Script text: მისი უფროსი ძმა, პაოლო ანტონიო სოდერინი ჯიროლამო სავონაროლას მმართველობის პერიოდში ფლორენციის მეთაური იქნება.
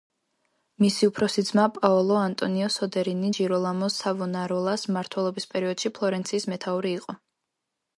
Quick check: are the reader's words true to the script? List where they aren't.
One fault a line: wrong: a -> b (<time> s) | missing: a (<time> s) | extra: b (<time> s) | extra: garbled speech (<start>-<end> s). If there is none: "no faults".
wrong: იქნება -> იყო (7.0 s)